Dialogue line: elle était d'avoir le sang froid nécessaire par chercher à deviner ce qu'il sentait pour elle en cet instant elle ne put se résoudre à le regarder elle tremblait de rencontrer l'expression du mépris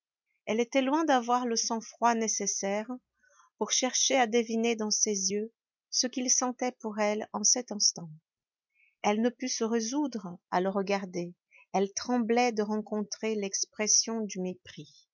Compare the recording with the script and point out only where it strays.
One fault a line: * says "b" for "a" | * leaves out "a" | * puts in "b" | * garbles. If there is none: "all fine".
* puts in "loin"
* says "pour" for "par"
* puts in "dans ses yeux"